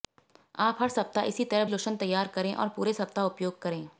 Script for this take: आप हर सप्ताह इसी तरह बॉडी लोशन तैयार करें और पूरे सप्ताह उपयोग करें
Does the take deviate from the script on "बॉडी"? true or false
true